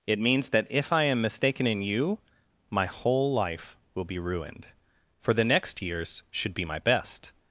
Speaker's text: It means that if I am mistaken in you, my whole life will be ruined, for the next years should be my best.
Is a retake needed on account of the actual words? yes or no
no